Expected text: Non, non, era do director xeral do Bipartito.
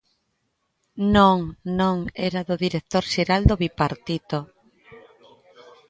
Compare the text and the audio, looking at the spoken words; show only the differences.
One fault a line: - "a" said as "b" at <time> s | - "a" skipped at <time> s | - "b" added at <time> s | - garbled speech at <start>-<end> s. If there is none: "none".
none